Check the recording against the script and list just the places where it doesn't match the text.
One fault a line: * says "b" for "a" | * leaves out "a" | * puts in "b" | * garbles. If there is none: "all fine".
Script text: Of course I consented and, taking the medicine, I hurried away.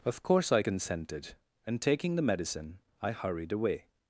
all fine